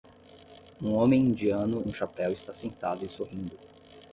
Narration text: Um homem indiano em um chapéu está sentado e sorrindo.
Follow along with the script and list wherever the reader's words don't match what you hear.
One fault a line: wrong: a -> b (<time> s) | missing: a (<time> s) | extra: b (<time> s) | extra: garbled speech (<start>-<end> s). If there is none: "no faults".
missing: em (1.9 s)